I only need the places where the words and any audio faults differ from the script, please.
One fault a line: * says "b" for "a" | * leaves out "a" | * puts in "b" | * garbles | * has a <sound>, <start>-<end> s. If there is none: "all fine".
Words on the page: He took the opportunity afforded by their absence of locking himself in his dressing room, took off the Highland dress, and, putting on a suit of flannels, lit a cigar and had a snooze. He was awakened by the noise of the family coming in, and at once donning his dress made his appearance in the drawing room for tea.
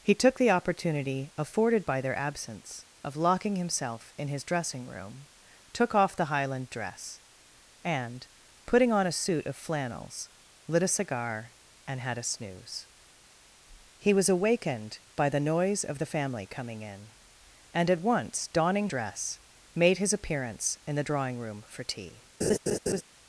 * leaves out "his"
* has a laugh, 22.4-23.0 s